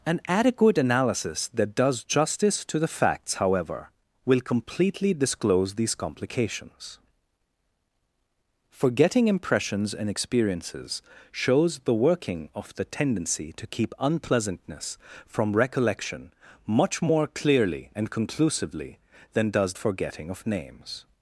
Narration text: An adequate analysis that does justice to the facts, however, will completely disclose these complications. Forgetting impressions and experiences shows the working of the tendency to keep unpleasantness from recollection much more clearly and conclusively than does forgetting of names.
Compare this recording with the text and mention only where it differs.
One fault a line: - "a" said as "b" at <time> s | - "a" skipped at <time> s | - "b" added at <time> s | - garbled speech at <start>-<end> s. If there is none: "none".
none